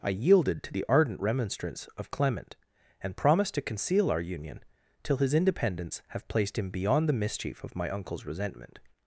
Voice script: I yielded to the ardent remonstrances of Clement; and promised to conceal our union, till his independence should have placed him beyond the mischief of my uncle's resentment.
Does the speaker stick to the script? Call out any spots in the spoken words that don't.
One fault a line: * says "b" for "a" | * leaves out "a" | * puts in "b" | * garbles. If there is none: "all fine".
* says "remonstrance" for "remonstrances"
* leaves out "should"